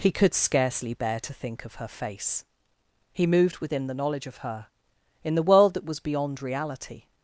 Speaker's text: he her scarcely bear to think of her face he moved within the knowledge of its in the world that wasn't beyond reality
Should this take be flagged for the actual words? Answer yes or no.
yes